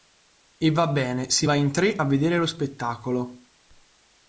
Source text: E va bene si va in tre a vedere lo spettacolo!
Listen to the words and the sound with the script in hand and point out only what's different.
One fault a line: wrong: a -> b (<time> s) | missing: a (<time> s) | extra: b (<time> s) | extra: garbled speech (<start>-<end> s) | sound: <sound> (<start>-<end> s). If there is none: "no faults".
no faults